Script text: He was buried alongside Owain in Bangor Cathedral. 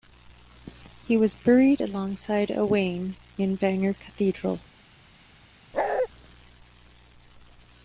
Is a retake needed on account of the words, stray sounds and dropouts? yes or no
yes